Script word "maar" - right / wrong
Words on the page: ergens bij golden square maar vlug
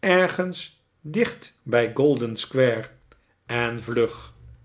wrong